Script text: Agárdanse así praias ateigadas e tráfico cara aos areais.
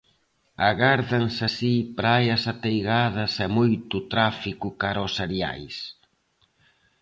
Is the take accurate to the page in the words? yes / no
no